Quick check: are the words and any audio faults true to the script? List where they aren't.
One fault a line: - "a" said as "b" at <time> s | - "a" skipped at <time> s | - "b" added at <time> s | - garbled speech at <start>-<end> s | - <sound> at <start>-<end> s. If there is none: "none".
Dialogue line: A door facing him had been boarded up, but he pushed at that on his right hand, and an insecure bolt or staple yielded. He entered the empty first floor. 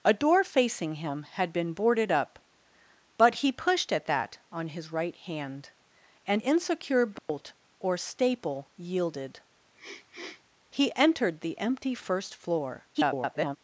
- "an" skipped at 6.4 s
- dropout at 7.2-7.3 s
- sniff at 9.8-10.4 s
- garbled speech at 12.9-13.6 s